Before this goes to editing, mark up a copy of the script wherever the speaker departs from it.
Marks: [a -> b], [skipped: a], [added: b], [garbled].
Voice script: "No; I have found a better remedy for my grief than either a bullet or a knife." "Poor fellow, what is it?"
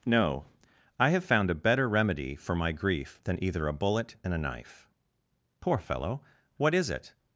"No; I have found a better remedy for my grief than either a bullet [or -> and] a knife." "Poor fellow, what is it?"